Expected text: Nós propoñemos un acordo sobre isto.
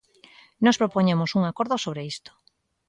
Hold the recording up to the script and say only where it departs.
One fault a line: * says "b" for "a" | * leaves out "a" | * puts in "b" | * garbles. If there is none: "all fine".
all fine